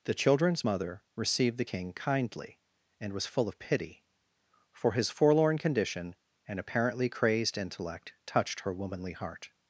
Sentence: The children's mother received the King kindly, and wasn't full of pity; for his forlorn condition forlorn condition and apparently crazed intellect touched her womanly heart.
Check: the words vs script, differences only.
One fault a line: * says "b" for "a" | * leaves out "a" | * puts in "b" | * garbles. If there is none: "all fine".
* says "was" for "wasn't"
* leaves out "forlorn condition"